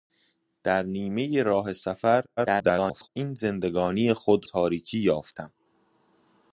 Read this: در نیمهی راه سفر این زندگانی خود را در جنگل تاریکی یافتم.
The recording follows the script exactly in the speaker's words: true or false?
false